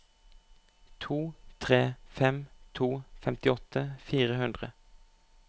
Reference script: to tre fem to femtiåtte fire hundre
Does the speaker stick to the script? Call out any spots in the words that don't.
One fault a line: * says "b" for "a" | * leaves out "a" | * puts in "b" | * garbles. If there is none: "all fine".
all fine